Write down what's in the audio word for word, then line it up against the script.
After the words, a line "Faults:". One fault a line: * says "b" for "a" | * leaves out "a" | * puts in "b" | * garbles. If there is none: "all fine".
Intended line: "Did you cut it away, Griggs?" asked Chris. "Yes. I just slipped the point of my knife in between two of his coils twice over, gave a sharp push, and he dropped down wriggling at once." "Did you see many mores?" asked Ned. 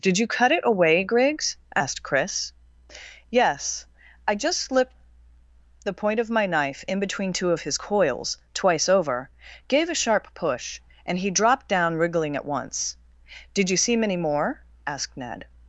"Did you cut it away, Griggs?" asked Chris. "Yes. I just slipped the point of my knife in between two of his coils twice over, gave a sharp push, and he dropped down wriggling at once." "Did you see many more?" asked Ned.
Faults:
* says "more" for "mores"